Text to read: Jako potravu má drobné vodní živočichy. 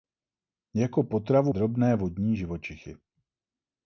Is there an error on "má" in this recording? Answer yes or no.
yes